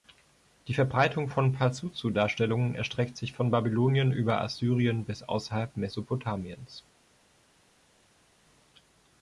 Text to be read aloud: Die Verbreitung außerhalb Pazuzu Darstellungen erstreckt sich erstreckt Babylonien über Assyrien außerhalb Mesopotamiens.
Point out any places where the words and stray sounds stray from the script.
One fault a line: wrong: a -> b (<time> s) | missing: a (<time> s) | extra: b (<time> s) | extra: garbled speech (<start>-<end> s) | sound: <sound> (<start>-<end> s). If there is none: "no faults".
wrong: außerhalb -> von (1.3 s)
wrong: erstreckt -> von (3.3 s)
extra: bis (5.0 s)